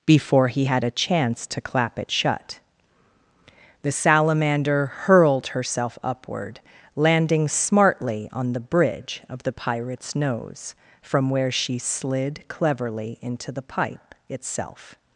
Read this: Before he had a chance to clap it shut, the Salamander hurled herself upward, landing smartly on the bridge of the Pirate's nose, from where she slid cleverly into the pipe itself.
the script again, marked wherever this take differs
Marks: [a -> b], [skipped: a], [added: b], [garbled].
Before he had a chance to clap it shut, the Salamander hurled herself upward, landing smartly on the bridge of the Pirate's nose, from where she slid cleverly into the pipe itself.